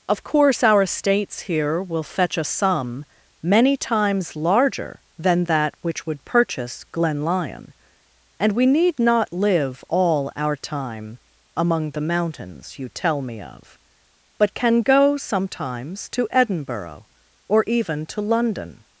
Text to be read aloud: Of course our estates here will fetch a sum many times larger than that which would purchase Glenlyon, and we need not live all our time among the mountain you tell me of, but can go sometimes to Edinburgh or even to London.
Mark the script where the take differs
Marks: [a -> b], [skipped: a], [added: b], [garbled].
Of course our estates here will fetch a sum many times larger than that which would purchase Glenlyon, and we need not live all our time among the [mountain -> mountains] you tell me of, but can go sometimes to Edinburgh or even to London.